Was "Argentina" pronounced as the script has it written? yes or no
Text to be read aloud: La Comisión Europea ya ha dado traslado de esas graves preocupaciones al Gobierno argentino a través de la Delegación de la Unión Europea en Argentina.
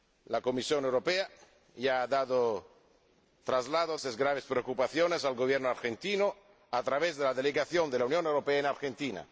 yes